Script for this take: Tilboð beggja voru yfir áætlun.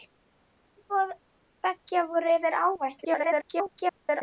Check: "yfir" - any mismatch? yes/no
no